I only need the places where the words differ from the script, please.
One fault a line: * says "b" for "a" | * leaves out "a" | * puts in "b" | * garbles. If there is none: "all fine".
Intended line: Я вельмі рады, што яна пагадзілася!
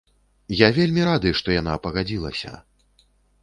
all fine